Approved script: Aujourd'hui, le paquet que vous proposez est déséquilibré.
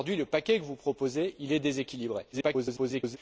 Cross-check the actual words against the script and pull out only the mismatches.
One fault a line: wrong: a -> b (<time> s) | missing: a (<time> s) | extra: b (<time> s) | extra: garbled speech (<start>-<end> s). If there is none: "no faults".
extra: garbled speech (2.3-3.2 s)